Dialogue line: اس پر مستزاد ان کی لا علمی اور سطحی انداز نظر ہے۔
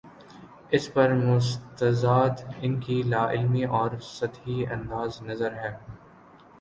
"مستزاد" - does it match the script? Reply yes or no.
yes